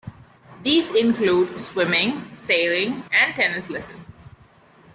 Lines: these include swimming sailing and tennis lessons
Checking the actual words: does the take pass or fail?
pass